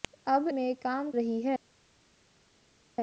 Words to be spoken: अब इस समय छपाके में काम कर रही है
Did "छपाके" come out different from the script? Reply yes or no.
yes